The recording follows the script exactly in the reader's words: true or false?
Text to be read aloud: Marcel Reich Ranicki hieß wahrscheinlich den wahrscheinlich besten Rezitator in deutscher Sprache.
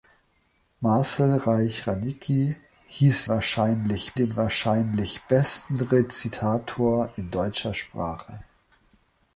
true